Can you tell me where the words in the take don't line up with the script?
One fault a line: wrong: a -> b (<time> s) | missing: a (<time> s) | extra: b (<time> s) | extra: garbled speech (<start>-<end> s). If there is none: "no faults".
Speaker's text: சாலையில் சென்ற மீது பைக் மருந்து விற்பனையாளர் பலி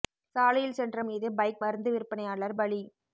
no faults